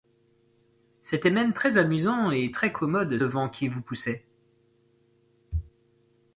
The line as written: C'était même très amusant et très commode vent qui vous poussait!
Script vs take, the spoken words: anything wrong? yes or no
no